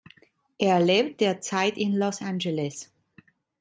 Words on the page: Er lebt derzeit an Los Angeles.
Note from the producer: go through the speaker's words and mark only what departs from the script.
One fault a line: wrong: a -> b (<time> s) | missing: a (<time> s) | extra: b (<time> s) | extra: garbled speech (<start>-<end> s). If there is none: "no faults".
wrong: an -> in (1.8 s)